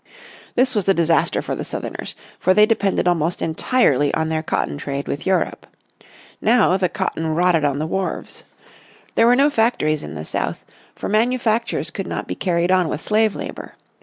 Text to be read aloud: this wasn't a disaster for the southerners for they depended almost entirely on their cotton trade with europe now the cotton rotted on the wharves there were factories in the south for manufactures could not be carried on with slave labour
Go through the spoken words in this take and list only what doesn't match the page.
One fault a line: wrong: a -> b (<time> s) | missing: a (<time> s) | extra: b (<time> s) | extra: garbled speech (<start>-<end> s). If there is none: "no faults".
wrong: wasn't -> was (0.7 s)
extra: no (9.3 s)